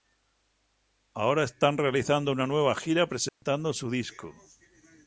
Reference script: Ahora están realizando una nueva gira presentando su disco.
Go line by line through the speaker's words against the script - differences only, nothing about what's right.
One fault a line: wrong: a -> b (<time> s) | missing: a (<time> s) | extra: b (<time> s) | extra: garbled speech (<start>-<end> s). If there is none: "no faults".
no faults